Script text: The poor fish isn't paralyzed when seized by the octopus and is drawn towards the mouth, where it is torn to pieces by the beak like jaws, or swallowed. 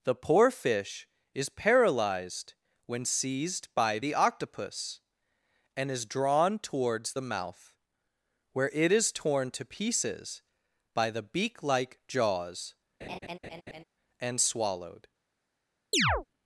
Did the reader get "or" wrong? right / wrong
wrong